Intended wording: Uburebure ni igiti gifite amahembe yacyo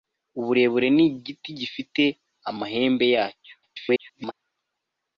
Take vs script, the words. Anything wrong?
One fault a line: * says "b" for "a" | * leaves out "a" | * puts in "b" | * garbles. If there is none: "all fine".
* garbles